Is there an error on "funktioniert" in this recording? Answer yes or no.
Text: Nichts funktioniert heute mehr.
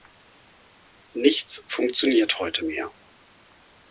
no